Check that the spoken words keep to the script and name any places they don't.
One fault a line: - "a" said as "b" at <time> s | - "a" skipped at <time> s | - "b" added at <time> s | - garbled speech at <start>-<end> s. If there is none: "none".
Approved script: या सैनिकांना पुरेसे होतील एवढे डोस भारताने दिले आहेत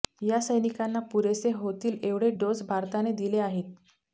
none